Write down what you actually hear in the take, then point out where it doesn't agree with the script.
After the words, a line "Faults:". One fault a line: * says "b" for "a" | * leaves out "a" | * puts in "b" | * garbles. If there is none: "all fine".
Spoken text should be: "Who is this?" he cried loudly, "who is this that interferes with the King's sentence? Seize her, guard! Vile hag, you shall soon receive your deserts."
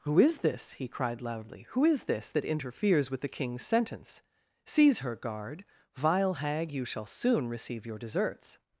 "Who is this?" he cried loudly, "who is this that interferes with the King's sentence? Seize her, guard! Vile hag, you shall soon receive your deserts."
Faults:
all fine